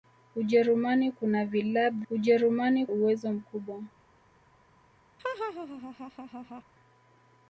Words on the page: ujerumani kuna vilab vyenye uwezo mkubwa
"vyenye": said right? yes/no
no